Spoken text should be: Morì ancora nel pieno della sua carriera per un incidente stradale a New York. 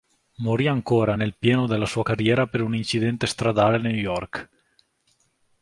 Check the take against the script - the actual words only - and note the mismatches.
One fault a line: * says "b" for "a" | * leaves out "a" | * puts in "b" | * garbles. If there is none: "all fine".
all fine